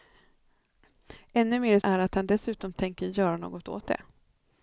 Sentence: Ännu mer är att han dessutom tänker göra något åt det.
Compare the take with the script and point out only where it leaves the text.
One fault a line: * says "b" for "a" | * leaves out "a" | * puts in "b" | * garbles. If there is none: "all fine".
all fine